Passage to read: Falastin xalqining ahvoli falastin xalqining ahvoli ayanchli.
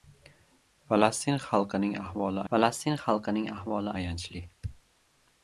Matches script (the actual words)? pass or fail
pass